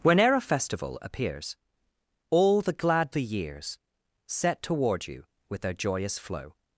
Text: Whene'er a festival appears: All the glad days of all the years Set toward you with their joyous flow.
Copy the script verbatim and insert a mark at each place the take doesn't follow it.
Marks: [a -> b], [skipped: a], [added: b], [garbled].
Whene'er a festival appears: All the glad [skipped: days of all] the years Set toward you with their joyous flow.